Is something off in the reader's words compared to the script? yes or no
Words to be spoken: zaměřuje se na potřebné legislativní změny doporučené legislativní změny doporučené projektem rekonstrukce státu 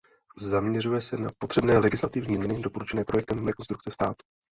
yes